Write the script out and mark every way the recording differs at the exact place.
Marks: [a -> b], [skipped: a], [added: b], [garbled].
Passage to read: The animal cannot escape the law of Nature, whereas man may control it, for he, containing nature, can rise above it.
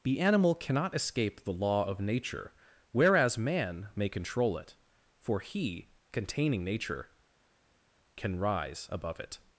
The animal cannot escape the law of Nature, whereas man may control it, for he, containing nature, can rise above it.